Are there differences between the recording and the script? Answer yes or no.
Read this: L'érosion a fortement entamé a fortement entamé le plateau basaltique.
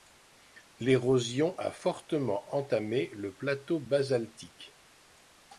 yes